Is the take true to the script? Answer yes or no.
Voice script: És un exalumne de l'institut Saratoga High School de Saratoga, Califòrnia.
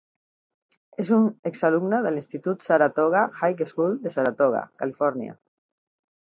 yes